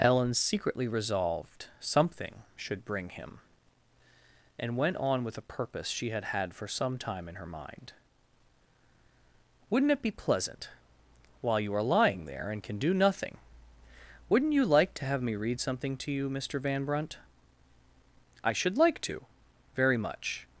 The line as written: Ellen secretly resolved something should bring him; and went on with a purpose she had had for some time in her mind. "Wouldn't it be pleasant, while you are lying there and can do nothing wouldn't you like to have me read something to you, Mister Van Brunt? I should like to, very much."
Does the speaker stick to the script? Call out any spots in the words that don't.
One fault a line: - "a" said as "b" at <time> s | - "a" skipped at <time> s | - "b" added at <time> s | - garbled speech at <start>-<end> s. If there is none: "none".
none